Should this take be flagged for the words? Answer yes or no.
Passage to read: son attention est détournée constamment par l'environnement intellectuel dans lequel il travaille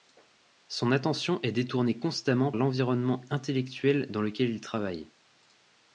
yes